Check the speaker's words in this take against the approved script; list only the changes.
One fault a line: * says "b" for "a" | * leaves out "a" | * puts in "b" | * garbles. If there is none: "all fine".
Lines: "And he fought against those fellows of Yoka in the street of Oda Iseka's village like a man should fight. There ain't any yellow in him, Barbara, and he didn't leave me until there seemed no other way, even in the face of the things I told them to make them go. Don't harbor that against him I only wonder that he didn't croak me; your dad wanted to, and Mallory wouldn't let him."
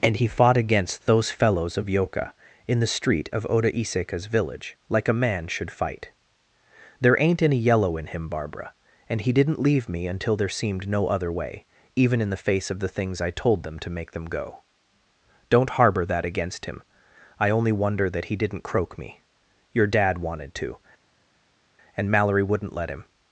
all fine